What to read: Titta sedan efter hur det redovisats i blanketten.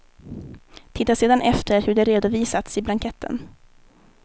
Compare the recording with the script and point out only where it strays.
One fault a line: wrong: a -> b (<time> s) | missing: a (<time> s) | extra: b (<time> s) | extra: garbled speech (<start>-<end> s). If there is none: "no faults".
no faults